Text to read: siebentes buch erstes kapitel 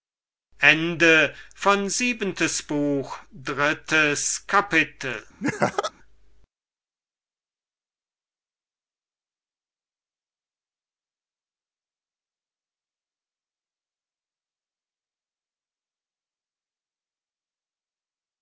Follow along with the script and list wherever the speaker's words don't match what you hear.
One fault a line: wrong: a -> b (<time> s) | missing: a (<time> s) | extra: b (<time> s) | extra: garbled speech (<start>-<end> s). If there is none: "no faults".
no faults